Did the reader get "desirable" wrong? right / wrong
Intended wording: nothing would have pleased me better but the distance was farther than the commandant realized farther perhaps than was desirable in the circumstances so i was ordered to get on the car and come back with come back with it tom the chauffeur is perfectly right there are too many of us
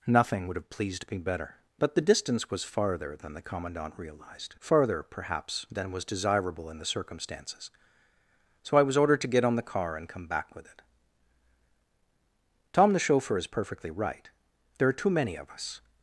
right